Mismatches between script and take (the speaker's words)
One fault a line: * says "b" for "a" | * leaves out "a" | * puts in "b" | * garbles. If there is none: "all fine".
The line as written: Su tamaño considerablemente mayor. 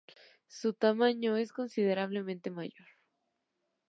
* puts in "es"